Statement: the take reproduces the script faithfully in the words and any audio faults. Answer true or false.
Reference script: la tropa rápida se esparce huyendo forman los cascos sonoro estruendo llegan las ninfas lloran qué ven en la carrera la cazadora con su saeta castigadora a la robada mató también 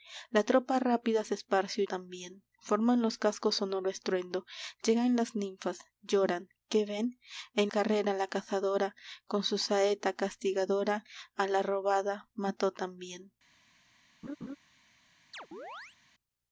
false